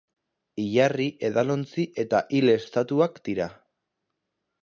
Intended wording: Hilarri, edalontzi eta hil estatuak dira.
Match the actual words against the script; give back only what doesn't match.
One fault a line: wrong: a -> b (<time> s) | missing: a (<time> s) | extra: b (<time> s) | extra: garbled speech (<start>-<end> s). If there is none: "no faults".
no faults